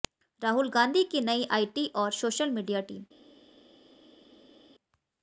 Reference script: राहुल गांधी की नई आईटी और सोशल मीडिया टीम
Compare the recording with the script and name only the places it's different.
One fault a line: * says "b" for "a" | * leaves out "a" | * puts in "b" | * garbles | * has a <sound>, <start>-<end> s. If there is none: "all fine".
all fine